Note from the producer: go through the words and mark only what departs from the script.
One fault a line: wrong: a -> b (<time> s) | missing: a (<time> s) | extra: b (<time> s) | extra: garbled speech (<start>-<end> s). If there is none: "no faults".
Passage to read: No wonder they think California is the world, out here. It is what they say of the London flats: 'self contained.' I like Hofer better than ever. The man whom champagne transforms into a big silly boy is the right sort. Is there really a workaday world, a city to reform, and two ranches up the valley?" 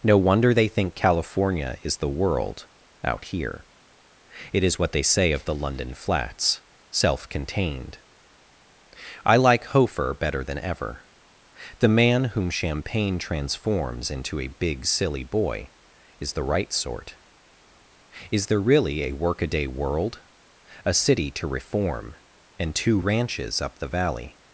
no faults